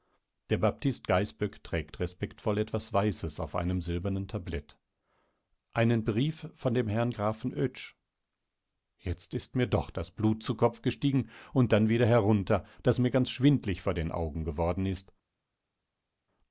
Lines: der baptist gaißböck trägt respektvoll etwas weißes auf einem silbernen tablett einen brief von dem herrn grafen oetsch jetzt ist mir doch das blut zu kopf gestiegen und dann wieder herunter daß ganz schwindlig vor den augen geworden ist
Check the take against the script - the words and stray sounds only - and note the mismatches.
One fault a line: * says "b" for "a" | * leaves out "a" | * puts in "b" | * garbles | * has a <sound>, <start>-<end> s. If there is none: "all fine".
* puts in "mir"